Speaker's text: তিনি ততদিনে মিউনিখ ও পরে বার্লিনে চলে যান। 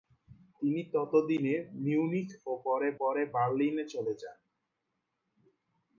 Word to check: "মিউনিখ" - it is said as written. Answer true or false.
true